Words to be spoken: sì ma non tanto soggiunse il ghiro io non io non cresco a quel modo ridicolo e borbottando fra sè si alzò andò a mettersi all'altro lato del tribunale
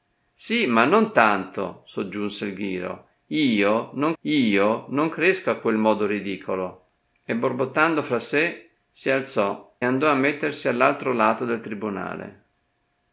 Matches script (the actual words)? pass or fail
pass